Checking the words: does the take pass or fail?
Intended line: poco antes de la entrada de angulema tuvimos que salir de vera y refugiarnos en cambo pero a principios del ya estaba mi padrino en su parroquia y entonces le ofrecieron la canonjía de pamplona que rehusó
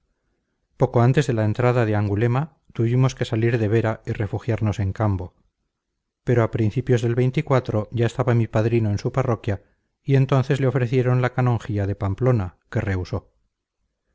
pass